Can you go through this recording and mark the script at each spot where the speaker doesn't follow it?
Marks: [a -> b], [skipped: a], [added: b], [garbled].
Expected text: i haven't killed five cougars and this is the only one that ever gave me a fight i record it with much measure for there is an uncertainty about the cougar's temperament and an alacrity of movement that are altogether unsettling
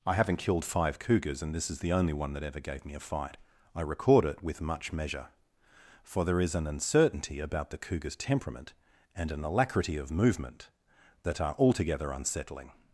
i haven't killed five cougars and this is the only one that ever gave me a fight i record it with much measure for there is an uncertainty about the cougar's temperament and an alacrity of movement that are altogether unsettling